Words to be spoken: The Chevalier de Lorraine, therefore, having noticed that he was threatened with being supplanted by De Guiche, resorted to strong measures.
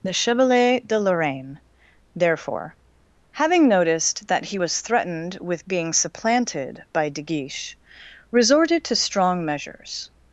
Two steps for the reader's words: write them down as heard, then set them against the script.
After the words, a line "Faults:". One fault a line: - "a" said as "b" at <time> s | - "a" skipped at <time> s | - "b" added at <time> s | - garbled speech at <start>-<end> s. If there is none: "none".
The Chevalier de Lorraine, therefore, having noticed that he was threatened with being supplanted by De Guiche, resorted to strong measures.
Faults:
none